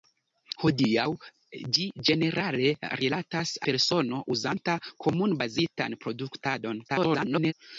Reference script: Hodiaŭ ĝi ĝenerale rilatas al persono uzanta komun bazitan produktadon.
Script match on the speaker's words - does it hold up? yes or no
no